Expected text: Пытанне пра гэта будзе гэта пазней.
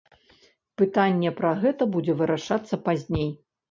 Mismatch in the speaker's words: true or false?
true